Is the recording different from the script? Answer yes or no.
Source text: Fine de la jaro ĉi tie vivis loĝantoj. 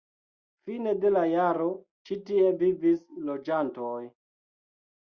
no